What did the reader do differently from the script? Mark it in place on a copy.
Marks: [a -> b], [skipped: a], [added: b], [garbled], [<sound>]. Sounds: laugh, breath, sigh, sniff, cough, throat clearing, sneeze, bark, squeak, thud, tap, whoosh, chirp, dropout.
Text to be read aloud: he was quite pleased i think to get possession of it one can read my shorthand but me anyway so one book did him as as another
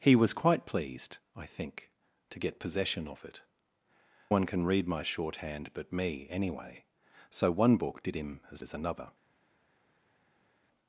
he was quite pleased i think to get possession of it one can read my shorthand but me anyway so one book did him as as another